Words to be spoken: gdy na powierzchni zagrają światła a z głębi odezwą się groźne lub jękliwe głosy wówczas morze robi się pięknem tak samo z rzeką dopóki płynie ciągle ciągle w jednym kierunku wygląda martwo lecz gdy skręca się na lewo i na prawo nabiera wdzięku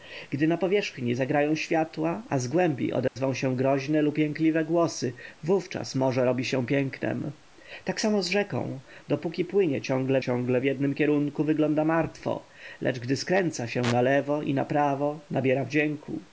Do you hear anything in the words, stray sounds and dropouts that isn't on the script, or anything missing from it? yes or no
yes